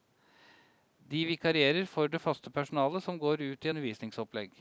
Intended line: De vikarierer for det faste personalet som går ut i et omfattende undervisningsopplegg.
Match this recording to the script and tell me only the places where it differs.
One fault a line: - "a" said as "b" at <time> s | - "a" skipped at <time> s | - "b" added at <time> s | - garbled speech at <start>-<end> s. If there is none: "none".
- "et omfattende" skipped at 3.7 s